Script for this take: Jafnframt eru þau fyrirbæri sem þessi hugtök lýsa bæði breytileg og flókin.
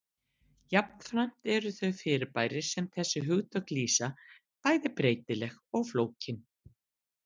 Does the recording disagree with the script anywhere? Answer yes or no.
no